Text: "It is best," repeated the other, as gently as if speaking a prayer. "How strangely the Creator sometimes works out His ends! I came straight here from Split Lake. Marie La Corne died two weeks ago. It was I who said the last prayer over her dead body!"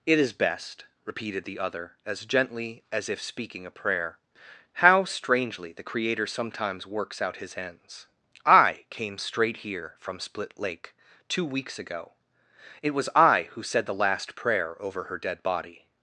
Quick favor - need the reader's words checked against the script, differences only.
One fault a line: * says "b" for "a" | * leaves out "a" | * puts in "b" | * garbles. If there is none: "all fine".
* leaves out "Marie La Corne died"